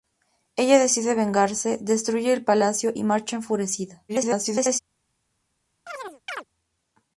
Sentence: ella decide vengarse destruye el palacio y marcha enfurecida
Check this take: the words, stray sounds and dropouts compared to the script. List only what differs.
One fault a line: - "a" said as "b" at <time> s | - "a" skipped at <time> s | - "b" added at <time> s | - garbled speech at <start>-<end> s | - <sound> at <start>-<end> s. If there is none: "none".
- garbled speech at 4.1-4.8 s
- chirp at 5.9-6.4 s